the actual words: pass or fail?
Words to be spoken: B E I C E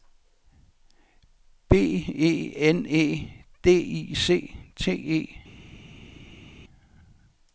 fail